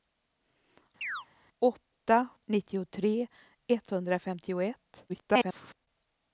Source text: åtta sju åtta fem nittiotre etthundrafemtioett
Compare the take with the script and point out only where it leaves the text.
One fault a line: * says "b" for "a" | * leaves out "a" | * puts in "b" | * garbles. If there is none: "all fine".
* leaves out "sju åtta fem"
* garbles